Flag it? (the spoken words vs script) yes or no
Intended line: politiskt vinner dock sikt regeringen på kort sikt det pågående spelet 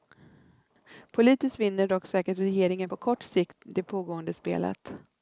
yes